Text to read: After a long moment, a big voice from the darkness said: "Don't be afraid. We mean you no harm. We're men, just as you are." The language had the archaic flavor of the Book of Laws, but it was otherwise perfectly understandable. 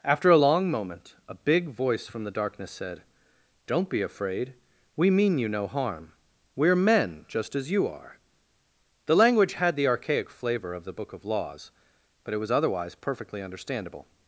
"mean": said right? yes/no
yes